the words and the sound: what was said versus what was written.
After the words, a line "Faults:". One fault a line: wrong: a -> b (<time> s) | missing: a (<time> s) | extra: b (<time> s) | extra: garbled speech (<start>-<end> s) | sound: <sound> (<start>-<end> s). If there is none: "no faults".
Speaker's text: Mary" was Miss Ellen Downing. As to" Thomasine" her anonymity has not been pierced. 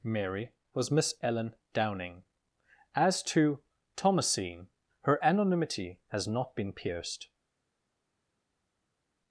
Mary" was Miss Ellen Downing. As to" Thomasine" her anonymity has not been pierced.
Faults:
no faults